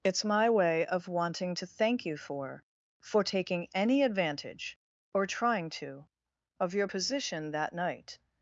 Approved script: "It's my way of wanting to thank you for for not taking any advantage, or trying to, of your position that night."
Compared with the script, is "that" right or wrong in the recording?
right